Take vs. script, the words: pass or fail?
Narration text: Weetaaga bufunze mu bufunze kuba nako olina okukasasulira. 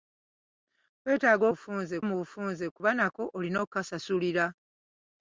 pass